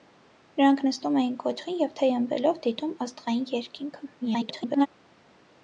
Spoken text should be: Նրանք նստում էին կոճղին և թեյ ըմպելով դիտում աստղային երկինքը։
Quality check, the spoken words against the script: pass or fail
fail